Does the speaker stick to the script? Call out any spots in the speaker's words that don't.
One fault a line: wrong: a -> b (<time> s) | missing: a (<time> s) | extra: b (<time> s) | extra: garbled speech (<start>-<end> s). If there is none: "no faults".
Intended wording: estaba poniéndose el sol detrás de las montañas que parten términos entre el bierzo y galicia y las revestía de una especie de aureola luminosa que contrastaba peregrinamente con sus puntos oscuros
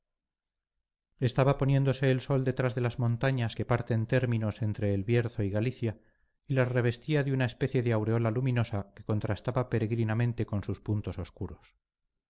no faults